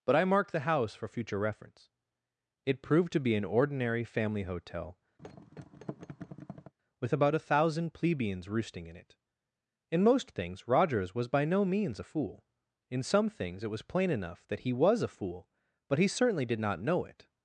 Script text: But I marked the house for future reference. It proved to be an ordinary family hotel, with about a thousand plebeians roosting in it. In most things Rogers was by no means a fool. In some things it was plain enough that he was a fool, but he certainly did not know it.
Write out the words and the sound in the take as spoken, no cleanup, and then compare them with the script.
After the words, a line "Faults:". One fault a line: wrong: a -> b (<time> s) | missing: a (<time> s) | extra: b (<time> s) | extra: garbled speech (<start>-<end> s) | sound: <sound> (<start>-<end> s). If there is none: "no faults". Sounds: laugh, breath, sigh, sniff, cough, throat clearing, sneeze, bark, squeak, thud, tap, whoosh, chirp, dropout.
But I marked the house for future reference. It proved to be an ordinary family hotel, with about a thousand plebeians roosting in it. In most things Rogers was by no means a fool. In some things it was plain enough that he was a fool, but he certainly did not know it.
Faults:
sound: thud (5.2-6.7 s)